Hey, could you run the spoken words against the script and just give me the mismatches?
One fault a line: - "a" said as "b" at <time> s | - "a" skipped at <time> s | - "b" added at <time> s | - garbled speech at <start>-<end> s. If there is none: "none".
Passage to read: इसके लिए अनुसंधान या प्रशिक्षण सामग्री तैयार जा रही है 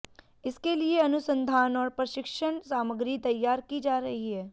- "या" said as "और" at 1.8 s
- "की" added at 3.6 s